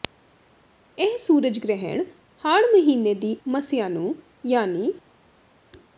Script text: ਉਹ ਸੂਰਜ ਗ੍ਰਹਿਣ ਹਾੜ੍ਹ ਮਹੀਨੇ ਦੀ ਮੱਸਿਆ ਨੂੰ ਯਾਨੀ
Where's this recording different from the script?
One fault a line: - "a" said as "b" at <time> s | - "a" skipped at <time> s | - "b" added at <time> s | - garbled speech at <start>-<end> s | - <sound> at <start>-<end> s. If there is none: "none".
- "ਉਹ" said as "ਇਹ" at 1.0 s